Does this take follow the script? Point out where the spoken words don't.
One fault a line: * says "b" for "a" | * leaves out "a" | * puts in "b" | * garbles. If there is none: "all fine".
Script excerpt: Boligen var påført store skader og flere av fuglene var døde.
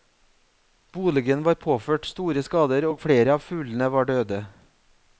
all fine